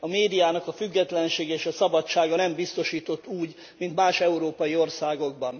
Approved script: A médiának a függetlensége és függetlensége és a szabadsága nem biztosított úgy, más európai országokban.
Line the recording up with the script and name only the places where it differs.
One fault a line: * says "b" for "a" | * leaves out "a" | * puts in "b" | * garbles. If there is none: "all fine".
* leaves out "függetlensége és"
* puts in "mint"